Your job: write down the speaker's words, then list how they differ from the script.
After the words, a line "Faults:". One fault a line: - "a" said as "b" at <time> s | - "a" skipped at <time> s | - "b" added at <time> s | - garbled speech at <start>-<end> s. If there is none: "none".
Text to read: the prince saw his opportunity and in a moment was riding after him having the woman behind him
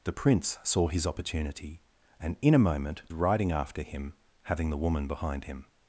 the prince saw his opportunity and in a moment riding after him having the woman behind him
Faults:
- "was" skipped at 3.0 s